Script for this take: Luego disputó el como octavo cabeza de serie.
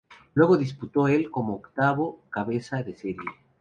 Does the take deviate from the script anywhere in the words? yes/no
no